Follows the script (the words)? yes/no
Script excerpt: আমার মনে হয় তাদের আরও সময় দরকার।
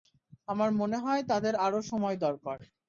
yes